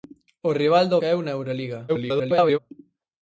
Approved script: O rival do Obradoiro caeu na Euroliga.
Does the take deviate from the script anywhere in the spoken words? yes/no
yes